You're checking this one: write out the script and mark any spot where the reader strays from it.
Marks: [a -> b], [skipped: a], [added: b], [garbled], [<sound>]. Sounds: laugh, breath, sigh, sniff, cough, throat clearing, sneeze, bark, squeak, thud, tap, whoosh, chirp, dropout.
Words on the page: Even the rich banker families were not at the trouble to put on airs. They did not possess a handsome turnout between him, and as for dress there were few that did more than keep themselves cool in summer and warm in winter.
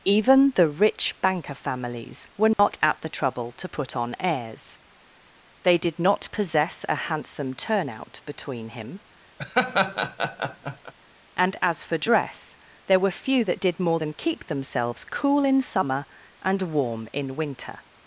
Even the rich banker families were not [dropout] at the trouble to put on airs. They did not possess a handsome turnout between him, [laugh] and as for dress there were few that did more than keep themselves cool in summer and warm in winter.